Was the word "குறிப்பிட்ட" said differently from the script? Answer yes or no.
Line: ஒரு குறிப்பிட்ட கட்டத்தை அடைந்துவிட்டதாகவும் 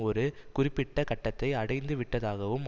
no